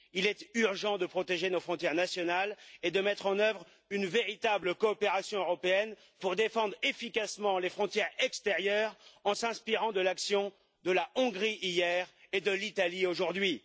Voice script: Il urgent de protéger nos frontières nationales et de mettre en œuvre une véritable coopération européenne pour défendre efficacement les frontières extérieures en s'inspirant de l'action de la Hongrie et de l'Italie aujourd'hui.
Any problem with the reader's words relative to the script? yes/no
yes